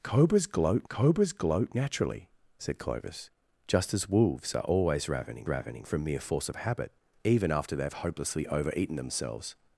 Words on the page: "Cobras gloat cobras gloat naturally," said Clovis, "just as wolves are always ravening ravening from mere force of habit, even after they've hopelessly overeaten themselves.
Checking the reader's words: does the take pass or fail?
pass